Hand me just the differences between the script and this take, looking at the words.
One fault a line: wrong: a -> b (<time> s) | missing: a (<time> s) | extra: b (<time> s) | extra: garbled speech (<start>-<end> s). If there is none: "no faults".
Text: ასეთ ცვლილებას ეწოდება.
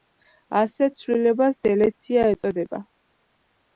extra: დელეცია (1.7 s)